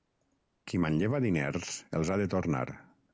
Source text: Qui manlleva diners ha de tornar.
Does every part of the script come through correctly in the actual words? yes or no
no